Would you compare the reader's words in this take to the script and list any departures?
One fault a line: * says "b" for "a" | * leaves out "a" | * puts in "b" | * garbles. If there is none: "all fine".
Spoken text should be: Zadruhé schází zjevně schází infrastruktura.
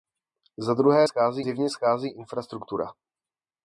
all fine